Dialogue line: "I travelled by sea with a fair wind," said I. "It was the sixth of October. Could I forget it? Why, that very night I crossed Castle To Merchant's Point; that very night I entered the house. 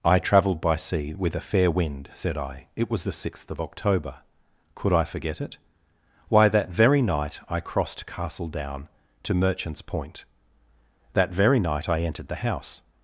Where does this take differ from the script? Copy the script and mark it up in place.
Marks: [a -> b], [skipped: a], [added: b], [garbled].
"I travelled by sea with a fair wind," said I. "It was the sixth of October. Could I forget it? Why, that very night I crossed Castle [added: Down] To Merchant's Point; that very night I entered the house.